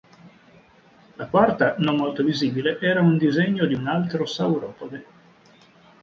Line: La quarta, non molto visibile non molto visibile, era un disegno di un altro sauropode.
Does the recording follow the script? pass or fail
fail